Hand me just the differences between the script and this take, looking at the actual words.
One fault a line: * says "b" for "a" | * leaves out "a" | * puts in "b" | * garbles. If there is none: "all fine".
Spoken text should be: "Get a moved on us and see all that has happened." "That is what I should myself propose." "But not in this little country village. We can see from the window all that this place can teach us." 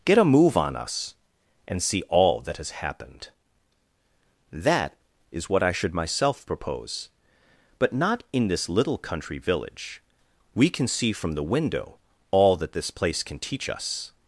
* says "move" for "moved"